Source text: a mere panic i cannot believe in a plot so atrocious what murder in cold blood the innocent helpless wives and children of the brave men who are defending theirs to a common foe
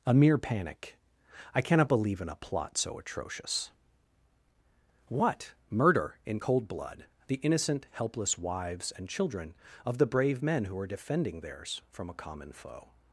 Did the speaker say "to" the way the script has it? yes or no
no